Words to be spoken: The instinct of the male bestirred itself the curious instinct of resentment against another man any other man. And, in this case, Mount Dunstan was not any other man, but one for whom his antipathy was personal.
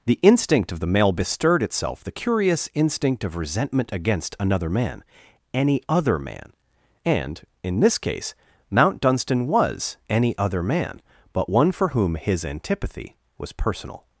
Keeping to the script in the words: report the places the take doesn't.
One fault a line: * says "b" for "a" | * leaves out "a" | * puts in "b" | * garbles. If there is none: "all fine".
* leaves out "not"